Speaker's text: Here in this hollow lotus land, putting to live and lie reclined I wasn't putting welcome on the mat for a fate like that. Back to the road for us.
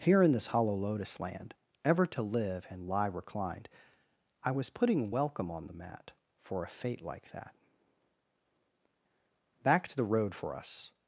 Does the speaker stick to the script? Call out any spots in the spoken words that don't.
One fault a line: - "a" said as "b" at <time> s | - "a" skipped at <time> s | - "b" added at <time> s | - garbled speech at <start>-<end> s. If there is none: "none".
- "putting" said as "ever" at 1.9 s
- "wasn't" said as "was" at 4.5 s